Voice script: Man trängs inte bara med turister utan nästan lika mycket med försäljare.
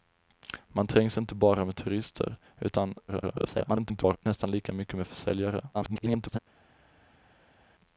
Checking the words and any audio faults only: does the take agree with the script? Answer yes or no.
no